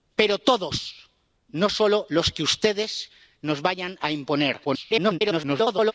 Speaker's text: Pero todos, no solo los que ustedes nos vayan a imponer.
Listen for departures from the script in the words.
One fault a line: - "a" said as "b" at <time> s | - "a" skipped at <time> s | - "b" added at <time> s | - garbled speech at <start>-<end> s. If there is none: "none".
- garbled speech at 4.6-5.9 s